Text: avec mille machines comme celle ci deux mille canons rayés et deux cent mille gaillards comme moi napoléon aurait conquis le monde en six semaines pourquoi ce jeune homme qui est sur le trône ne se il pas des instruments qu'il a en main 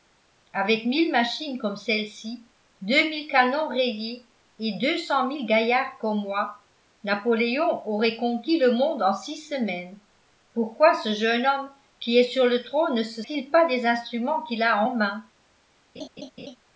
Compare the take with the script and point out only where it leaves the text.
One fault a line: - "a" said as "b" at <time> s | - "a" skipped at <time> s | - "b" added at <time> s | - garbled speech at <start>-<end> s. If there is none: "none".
none